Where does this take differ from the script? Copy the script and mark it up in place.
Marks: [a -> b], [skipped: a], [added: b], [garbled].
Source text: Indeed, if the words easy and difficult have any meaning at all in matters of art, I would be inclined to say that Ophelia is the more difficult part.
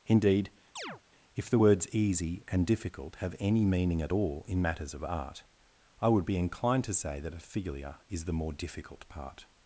Indeed, if the words easy and difficult have any meaning at all in matters of art, I would be inclined to say that Ophelia is the more difficult part.